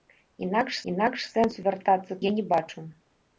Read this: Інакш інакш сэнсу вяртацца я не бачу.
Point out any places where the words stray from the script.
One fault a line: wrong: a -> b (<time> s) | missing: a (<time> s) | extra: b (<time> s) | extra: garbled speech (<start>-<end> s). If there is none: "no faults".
no faults